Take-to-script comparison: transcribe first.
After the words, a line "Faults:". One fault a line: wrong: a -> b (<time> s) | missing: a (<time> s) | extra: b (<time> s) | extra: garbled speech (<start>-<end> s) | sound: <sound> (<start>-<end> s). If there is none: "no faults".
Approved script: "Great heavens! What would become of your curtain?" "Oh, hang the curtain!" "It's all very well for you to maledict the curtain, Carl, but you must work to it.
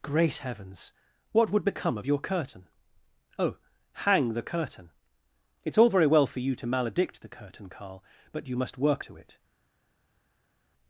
"Great heavens! What would become of your curtain?" "Oh, hang the curtain!" "It's all very well for you to maledict the curtain, Carl, but you must work to it.
Faults:
no faults